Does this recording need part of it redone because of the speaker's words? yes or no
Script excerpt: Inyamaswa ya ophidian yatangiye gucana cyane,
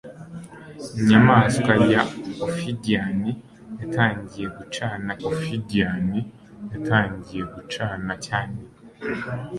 yes